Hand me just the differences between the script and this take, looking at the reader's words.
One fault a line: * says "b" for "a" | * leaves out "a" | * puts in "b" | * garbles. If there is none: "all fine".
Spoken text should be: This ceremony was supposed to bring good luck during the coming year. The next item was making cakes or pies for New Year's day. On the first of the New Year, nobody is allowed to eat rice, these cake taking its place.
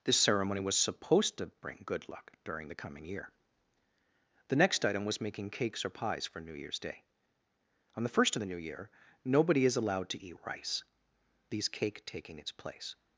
all fine